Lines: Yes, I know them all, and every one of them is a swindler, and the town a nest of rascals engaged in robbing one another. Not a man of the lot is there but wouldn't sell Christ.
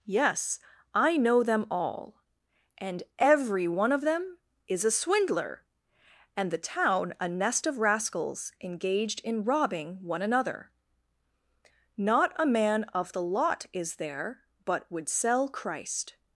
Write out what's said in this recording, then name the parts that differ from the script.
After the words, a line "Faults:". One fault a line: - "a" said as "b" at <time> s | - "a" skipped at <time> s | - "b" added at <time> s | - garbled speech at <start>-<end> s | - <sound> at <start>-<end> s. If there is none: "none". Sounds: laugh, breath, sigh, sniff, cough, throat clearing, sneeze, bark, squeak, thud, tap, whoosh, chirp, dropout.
Yes, I know them all, and every one of them is a swindler, and the town a nest of rascals engaged in robbing one another. Not a man of the lot is there but would sell Christ.
Faults:
- "wouldn't" said as "would" at 14.9 s